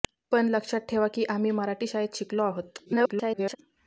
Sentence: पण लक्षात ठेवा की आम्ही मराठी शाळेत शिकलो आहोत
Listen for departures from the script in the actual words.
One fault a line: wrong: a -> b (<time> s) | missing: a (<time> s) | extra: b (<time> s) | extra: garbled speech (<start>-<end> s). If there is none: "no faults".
extra: garbled speech (2.8-3.6 s)